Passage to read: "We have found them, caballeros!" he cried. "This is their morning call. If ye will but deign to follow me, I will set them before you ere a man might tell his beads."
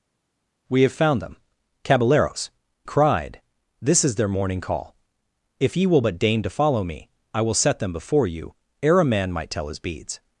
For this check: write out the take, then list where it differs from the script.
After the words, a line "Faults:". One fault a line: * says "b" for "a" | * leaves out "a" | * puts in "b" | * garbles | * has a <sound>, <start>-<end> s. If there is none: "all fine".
"We have found them, caballeros!" cried. "This is their morning call. If ye will but deign to follow me, I will set them before you ere a man might tell his beads."
Faults:
* leaves out "he"